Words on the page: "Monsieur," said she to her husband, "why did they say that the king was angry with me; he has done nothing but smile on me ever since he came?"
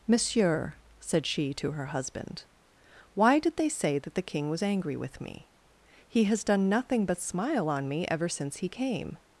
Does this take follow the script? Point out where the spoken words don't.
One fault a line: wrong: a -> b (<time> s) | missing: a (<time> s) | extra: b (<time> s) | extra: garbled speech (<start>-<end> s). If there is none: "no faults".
no faults